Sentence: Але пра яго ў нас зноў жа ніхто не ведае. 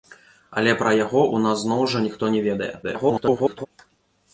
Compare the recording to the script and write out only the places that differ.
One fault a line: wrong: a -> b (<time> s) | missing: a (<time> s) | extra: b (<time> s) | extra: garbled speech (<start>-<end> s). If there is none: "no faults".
extra: garbled speech (2.8-3.7 s)